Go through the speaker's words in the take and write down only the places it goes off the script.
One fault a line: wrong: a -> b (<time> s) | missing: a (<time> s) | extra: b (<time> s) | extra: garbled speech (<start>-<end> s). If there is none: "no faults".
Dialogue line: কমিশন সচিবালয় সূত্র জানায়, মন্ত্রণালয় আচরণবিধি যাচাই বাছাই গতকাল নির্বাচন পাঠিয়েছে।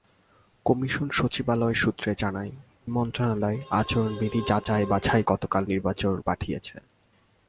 no faults